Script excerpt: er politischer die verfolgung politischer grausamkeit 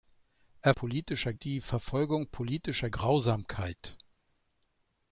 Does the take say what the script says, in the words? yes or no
yes